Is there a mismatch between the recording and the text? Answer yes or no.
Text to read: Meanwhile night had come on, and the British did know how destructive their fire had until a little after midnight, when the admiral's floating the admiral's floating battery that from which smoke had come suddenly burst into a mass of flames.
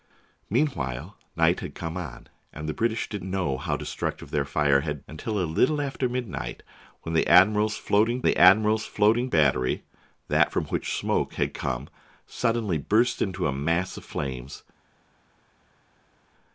no